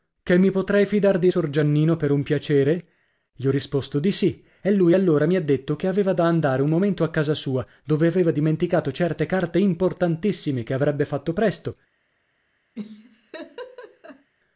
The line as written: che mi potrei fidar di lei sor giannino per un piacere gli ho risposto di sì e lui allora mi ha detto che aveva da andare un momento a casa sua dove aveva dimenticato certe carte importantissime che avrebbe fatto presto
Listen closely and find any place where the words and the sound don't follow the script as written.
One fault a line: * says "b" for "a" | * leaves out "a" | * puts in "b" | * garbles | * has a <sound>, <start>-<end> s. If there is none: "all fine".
* leaves out "lei"
* has a laugh, 12.7-14.3 s